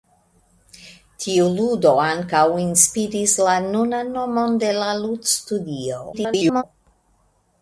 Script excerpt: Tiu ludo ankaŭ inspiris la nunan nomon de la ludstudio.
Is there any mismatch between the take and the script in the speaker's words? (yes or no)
yes